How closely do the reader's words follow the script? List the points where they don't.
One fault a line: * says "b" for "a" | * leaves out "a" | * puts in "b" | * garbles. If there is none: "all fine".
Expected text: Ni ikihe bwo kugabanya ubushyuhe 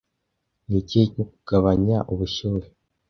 all fine